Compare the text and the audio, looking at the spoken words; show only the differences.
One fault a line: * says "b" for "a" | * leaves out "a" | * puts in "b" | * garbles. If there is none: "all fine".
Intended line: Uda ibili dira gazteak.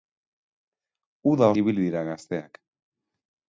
all fine